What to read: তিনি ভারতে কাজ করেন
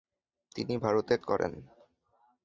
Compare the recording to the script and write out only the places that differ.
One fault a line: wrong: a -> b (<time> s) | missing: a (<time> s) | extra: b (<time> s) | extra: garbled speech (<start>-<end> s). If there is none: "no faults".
missing: কাজ (1.1 s)